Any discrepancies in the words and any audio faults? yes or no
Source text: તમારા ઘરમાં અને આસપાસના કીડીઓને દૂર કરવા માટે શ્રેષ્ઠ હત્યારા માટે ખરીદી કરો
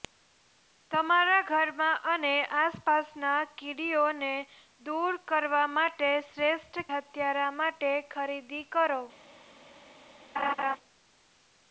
yes